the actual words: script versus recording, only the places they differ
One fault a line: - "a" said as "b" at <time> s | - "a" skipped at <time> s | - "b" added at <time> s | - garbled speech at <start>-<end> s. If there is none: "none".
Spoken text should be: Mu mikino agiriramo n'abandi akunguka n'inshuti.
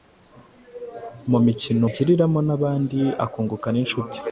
none